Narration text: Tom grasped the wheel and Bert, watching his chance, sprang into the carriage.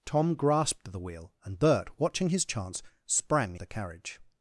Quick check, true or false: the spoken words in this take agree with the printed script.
false